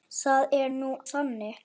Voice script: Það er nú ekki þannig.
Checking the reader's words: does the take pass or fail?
fail